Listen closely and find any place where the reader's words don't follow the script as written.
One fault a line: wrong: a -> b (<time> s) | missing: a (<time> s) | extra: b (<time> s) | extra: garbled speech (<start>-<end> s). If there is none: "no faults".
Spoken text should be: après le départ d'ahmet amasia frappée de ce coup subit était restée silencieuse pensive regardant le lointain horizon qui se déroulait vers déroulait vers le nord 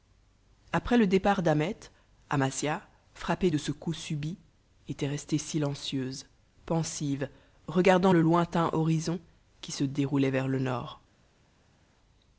missing: déroulait vers (10.5 s)